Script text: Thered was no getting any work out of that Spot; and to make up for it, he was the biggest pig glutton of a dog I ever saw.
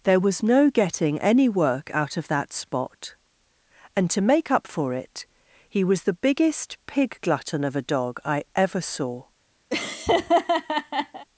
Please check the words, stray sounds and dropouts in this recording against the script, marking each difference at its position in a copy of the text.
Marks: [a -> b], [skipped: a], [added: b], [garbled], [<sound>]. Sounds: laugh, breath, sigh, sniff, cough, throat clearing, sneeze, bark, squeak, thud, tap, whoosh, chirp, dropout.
[Thered -> There] was no getting any work out of that Spot; and to make up for it, he was the biggest pig glutton of a dog I ever saw. [laugh]